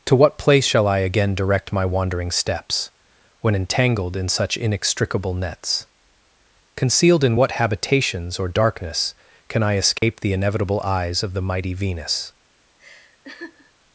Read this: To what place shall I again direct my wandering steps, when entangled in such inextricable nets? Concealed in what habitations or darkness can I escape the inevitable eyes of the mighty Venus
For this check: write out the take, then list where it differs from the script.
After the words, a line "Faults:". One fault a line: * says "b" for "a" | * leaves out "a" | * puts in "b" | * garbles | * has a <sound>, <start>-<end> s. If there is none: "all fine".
To what place shall I again direct my wandering steps, when entangled in such inextricable nets? Concealed in what habitations or darkness can I escape the inevitable eyes of the mighty Venus
Faults:
* has a dropout, 10.0-10.0 s
* has a laugh, 12.8-13.7 s